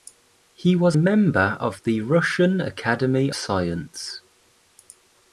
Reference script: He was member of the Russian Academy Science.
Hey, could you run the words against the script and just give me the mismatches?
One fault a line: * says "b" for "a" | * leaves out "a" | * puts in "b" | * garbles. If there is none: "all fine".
all fine